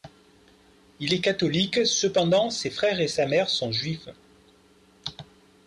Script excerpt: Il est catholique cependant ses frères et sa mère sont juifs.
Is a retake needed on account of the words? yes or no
no